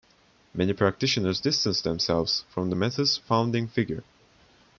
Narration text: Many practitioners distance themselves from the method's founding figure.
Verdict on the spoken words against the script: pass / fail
pass